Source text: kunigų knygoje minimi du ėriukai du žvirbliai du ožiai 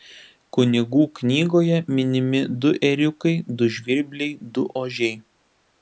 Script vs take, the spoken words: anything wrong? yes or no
no